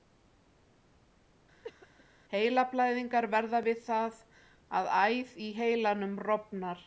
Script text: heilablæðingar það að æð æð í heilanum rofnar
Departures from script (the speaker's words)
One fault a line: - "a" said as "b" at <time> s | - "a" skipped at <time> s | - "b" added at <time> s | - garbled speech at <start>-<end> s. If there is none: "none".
- "verða við" added at 3.3 s
- "æð" skipped at 5.3 s